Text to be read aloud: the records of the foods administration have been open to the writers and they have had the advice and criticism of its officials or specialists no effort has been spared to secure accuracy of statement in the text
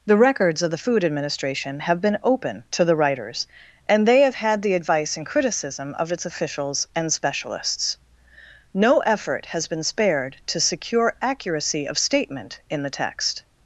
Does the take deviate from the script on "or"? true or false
true